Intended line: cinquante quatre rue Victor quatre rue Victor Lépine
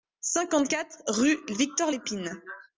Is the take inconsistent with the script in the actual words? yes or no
yes